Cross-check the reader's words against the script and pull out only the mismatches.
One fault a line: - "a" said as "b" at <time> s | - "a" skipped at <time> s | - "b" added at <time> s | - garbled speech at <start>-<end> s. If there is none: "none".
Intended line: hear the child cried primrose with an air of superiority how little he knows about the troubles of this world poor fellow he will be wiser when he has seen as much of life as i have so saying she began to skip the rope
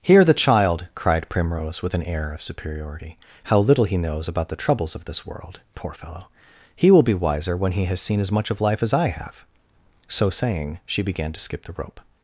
none